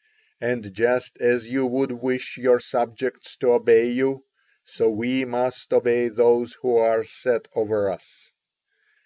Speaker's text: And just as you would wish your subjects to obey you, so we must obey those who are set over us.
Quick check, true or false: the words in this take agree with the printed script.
true